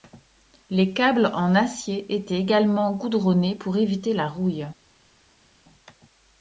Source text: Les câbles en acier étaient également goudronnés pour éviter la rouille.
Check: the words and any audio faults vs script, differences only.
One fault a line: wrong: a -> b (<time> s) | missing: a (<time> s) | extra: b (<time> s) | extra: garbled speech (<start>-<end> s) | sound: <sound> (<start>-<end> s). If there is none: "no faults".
no faults